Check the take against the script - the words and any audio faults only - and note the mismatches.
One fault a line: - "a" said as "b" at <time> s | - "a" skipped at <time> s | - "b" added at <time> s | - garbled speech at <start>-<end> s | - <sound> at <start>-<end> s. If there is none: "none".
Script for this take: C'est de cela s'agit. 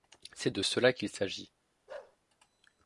- "qu'il" added at 0.9 s
- bark at 1.9-2.2 s